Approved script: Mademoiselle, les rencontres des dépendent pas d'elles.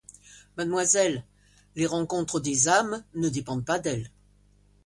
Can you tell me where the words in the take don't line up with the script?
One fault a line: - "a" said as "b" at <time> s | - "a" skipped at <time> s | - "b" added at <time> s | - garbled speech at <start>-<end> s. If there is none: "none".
- "âmes ne" added at 2.7 s